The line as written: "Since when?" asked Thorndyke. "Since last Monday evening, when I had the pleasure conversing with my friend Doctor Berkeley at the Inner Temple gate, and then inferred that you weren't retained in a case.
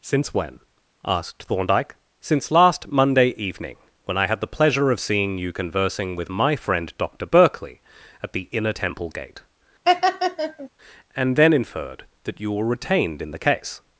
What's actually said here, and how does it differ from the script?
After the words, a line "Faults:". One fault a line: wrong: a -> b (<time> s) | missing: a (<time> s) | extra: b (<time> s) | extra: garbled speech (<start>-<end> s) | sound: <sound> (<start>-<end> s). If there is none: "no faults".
"Since when?" asked Thorndyke. "Since last Monday evening, when I had the pleasure of seeing you conversing with my friend Doctor Berkeley at the Inner Temple gate, and then inferred that you were retained in the case.
Faults:
extra: of seeing you (4.9 s)
sound: laugh (9.8-10.7 s)
wrong: weren't -> were (12.5 s)
wrong: a -> the (13.3 s)